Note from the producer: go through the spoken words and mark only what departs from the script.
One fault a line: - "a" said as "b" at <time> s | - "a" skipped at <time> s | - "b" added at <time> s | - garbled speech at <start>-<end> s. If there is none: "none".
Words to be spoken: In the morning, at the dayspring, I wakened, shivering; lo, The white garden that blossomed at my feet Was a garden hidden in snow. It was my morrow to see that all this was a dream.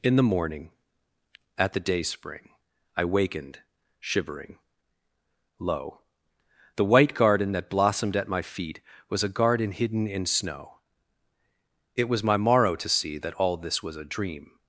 none